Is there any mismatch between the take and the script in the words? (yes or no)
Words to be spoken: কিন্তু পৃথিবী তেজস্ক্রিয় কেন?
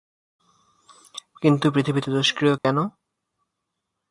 no